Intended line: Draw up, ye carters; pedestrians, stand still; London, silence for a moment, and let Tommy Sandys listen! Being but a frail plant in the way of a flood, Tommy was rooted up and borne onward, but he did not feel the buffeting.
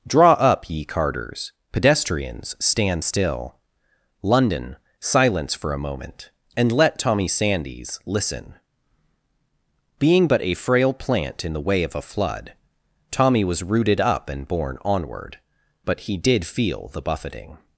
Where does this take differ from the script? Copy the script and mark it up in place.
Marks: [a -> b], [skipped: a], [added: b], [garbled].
Draw up, ye carters; pedestrians, stand still; London, silence for a moment, and let Tommy Sandys listen! Being but a frail plant in the way of a flood, Tommy was rooted up and borne onward, but he did [skipped: not] feel the buffeting.